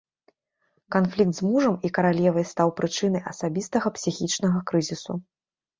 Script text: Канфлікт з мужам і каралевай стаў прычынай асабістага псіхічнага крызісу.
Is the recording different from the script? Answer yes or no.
no